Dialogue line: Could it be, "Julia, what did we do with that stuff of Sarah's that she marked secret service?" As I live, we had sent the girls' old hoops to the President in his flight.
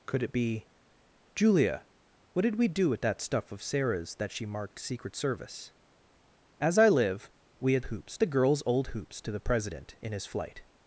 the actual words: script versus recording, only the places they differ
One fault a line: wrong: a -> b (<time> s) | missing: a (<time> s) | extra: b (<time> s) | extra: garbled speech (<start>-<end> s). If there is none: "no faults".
wrong: sent -> hoops (7.8 s)